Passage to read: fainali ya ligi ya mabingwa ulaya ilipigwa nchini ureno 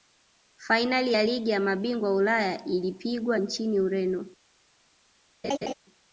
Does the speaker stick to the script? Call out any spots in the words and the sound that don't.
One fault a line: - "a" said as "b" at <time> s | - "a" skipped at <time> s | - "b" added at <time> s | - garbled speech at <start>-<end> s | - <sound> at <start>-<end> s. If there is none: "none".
- laugh at 5.4-5.7 s